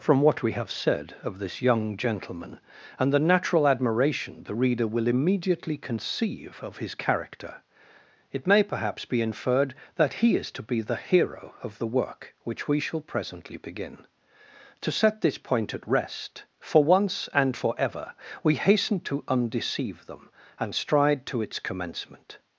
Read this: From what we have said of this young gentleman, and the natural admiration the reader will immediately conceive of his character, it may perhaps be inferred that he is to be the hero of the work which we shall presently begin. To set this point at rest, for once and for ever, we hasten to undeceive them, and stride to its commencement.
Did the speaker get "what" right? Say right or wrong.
right